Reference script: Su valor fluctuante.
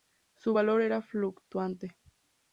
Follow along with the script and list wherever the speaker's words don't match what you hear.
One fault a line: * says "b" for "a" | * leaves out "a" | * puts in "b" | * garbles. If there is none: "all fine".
* puts in "era"